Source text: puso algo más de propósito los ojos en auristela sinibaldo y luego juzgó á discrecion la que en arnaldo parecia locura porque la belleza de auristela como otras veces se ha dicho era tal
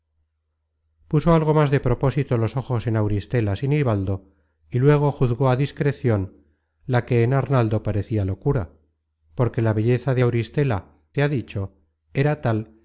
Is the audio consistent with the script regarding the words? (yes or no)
no